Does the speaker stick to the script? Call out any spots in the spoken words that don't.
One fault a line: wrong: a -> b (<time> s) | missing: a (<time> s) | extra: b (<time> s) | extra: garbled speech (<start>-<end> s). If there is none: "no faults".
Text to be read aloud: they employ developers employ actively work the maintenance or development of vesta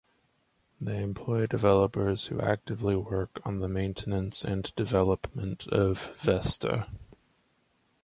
wrong: employ -> who (2.2 s)
extra: on (3.4 s)
wrong: or -> and (4.4 s)